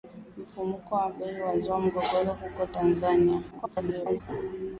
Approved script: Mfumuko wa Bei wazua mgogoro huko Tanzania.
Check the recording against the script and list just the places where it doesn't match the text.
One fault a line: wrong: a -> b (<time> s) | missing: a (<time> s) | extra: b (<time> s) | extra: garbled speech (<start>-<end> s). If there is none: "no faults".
extra: garbled speech (3.5-4.2 s)